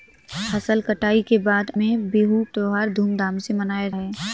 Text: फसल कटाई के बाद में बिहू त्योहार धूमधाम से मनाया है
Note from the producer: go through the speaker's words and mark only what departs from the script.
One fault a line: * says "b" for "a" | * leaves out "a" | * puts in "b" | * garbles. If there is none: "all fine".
all fine